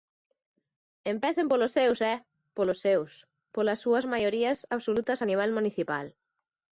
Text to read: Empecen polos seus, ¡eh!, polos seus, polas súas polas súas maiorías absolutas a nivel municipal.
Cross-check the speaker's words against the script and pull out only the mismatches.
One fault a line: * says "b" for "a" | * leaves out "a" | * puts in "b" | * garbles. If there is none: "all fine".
* leaves out "polas súas"